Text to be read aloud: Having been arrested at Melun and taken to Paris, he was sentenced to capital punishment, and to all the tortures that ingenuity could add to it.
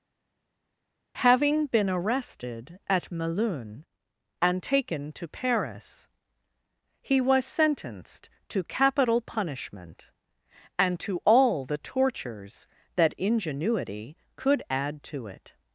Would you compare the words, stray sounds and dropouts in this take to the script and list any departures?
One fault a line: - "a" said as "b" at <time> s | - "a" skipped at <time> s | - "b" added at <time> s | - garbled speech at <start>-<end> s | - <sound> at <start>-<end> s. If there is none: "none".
none